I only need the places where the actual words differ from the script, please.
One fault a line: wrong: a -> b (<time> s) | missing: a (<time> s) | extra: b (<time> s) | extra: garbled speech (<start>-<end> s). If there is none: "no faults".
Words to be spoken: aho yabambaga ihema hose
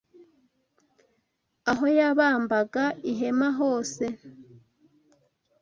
no faults